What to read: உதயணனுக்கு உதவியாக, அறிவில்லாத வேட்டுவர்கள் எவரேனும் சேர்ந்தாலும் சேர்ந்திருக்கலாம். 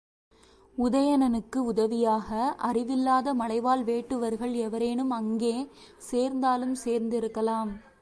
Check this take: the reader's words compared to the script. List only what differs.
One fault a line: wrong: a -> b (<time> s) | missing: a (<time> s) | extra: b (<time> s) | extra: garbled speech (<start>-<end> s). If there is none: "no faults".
extra: மலைவாழ் (3.3 s)
extra: அங்கே (5.1 s)